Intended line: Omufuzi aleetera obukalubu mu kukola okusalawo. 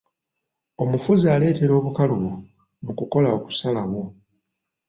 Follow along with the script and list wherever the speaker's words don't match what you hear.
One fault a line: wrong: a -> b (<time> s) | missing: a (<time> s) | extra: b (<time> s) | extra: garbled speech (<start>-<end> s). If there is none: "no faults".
no faults